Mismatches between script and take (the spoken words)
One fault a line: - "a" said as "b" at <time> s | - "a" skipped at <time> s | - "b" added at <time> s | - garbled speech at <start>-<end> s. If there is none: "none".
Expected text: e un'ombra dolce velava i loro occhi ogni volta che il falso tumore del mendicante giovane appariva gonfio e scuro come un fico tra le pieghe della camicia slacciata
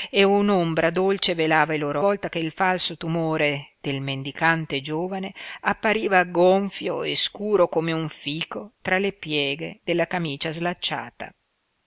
- "occhi ogni" skipped at 2.0 s